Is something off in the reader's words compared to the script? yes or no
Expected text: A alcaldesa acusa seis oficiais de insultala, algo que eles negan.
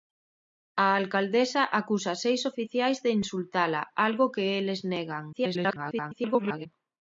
yes